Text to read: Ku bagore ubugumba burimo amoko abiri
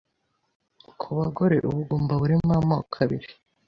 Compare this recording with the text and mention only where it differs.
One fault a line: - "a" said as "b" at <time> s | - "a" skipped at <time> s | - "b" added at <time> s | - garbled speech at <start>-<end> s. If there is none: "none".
none